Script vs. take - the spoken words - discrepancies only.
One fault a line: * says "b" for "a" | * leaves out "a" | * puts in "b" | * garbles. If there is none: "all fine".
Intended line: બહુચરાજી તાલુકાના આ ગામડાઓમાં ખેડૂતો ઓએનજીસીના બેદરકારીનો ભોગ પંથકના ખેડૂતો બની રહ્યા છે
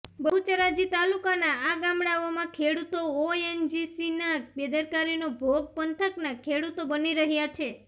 all fine